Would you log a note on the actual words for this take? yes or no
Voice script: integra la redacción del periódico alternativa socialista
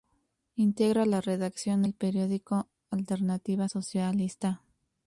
no